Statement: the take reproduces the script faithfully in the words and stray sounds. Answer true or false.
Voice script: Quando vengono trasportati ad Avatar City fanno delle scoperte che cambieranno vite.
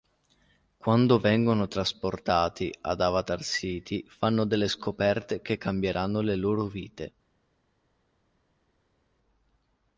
false